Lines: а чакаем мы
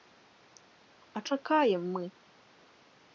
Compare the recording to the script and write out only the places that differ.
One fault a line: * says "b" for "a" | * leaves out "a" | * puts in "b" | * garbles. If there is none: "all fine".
all fine